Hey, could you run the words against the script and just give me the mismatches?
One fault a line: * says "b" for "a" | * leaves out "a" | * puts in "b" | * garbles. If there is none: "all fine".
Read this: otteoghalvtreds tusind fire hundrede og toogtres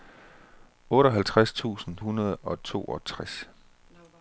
* leaves out "fire"